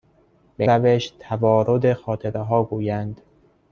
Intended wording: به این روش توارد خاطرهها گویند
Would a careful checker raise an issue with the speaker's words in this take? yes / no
yes